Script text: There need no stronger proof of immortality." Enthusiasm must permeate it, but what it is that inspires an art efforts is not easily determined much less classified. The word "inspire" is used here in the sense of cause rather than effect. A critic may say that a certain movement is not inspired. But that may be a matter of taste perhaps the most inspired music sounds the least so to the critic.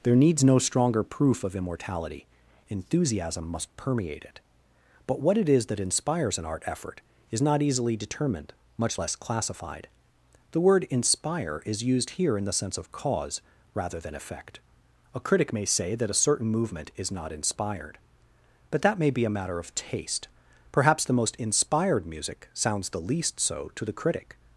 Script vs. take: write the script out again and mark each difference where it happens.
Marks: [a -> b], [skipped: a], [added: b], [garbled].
There [need -> needs] no stronger proof of immortality." Enthusiasm must permeate it, but what it is that inspires an art [efforts -> effort] is not easily determined much less classified. The word "inspire" is used here in the sense of cause rather than effect. A critic may say that a certain movement is not inspired. But that may be a matter of taste perhaps the most inspired music sounds the least so to the critic.